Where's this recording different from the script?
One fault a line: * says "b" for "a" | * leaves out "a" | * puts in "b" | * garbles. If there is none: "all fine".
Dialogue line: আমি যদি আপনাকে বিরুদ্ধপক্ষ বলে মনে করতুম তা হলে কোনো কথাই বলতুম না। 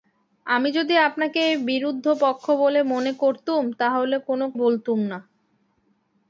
* leaves out "কথাই"